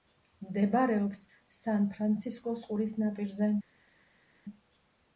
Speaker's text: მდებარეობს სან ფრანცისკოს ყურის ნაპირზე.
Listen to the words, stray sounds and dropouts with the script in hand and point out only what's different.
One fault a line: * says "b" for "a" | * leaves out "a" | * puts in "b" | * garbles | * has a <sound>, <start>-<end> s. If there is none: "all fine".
all fine